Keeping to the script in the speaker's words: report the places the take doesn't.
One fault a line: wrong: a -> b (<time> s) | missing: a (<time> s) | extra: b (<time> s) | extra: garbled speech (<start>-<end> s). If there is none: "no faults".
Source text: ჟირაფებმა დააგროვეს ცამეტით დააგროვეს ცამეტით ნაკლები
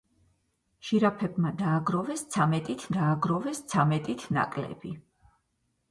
no faults